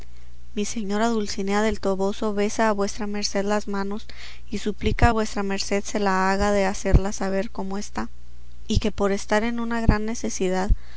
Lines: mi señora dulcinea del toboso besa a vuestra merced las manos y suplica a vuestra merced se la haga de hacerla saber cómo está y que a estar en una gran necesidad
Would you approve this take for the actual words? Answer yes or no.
no